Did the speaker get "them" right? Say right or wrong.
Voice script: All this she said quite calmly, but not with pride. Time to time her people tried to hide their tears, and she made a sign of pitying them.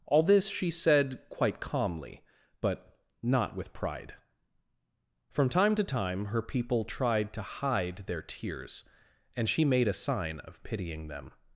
right